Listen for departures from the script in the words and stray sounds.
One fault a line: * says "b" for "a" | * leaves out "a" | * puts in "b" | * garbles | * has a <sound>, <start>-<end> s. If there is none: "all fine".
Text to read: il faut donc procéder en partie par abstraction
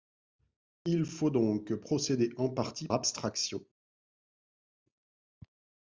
* leaves out "par"